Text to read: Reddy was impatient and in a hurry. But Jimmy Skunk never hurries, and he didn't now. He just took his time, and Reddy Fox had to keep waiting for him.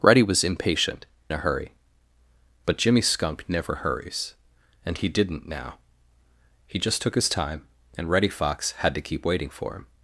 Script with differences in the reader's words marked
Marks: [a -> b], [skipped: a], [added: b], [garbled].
Reddy was impatient [skipped: and in] a hurry. But Jimmy Skunk never hurries, and he didn't now. He just took his time, and Reddy Fox had to keep waiting for him.